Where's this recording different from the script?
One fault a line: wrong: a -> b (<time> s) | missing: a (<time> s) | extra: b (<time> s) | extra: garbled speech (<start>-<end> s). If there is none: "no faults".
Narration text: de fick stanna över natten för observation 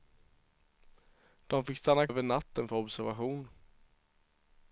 no faults